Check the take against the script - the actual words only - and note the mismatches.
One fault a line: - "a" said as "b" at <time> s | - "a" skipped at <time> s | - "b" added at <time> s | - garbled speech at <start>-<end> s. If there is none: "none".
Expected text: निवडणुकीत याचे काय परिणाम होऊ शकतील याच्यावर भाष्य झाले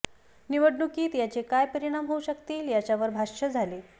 none